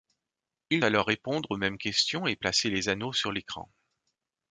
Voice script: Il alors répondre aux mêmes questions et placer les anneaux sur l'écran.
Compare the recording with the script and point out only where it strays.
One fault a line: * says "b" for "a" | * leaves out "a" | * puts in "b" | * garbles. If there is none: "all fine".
all fine